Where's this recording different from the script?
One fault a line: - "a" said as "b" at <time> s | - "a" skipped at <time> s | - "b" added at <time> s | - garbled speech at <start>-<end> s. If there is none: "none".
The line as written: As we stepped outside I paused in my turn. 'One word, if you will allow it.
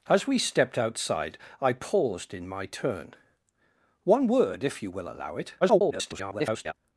- garbled speech at 5.6-6.7 s